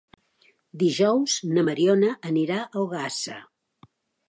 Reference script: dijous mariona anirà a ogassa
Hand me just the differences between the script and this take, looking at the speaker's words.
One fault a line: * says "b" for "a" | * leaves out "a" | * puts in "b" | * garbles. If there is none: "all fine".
* puts in "na"